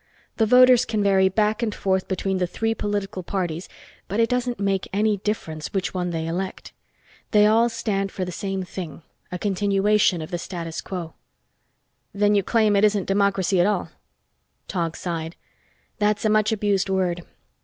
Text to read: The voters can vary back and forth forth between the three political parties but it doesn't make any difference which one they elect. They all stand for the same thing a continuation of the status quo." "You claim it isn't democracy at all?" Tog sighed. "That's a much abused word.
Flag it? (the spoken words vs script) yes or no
yes